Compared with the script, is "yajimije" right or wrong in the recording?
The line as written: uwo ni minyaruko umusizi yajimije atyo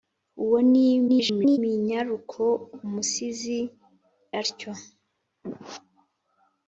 wrong